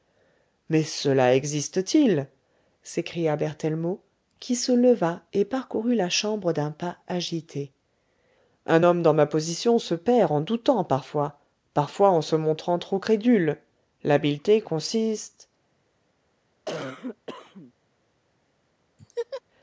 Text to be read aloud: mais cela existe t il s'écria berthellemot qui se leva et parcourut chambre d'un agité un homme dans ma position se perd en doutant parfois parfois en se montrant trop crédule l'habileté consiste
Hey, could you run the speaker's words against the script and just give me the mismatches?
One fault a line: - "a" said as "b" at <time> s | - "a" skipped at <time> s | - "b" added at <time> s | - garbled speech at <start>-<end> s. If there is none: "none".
- "la" added at 5.9 s
- "pas" added at 6.7 s